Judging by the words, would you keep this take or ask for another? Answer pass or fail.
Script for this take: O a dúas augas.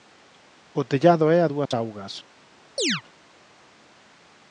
fail